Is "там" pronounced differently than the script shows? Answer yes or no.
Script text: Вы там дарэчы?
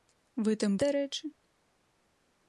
no